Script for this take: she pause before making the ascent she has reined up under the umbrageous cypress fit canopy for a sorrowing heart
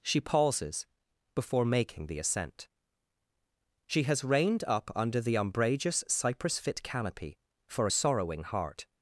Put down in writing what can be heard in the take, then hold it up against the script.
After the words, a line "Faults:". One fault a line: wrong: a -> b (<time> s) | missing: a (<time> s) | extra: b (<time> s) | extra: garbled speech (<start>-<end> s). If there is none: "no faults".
she pauses before making the ascent she has reined up under the umbrageous cypress fit canopy for a sorrowing heart
Faults:
wrong: pause -> pauses (0.2 s)